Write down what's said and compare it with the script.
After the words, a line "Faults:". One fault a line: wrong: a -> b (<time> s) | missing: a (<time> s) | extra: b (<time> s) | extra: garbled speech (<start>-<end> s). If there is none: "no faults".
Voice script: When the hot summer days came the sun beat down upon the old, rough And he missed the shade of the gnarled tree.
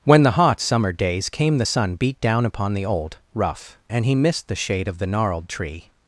When the hot summer days came the sun beat down upon the old, rough And he missed the shade of the gnarled tree.
Faults:
no faults